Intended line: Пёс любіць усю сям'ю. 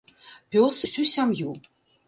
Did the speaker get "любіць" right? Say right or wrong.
wrong